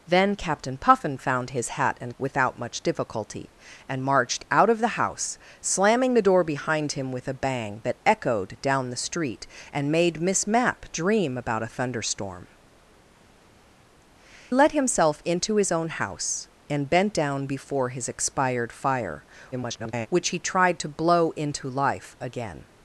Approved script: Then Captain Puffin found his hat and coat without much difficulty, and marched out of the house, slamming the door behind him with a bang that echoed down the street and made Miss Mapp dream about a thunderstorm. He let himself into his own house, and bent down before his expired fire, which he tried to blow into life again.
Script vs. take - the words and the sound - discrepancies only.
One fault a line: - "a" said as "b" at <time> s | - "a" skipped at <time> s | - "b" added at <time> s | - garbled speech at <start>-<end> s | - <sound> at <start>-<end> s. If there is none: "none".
- "coat" skipped at 2.2 s
- "He" skipped at 12.5 s
- garbled speech at 19.5-20.1 s